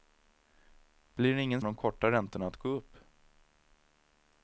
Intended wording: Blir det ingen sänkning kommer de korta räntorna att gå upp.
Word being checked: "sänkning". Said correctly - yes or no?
no